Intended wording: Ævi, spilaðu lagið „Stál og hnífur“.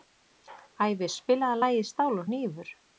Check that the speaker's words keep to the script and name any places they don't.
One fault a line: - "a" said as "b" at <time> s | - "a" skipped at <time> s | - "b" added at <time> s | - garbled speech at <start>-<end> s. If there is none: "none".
none